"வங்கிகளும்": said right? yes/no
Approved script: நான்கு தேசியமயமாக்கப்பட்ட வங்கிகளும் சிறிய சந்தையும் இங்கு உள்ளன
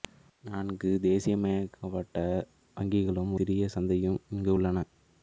yes